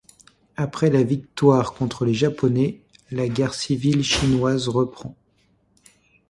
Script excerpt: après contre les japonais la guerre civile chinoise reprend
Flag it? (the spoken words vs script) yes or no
yes